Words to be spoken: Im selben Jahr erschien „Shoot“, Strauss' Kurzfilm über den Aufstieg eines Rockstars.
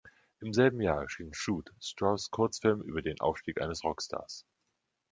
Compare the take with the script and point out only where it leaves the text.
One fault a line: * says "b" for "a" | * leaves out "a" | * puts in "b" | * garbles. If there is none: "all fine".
all fine